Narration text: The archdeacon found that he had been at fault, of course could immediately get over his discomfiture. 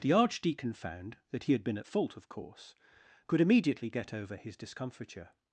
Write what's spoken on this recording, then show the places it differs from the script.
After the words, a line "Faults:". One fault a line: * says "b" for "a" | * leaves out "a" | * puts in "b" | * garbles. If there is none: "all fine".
The archdeacon found that he had been at fault, of course could immediately get over his discomfiture.
Faults:
all fine